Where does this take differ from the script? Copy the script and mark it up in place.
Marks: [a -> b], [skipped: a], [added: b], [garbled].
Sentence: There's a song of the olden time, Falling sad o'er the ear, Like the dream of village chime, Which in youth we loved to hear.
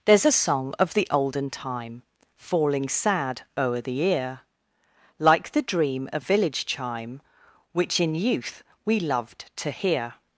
There's a song of the olden time, Falling sad o'er the ear, Like the dream of village chime, Which in youth we loved to hear.